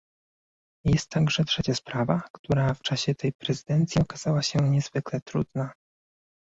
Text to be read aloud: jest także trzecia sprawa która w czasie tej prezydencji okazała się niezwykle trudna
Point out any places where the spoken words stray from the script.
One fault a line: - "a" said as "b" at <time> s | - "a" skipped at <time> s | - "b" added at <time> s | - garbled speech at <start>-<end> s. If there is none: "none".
none